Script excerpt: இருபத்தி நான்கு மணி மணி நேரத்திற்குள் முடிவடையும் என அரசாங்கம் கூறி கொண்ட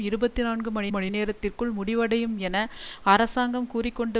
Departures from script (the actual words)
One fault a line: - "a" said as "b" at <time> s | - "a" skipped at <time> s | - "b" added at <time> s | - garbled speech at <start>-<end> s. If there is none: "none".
none